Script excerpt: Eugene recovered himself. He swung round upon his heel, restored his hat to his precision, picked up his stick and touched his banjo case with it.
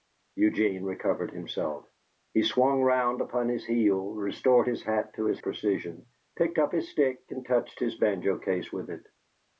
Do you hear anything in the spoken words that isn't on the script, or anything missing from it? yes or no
no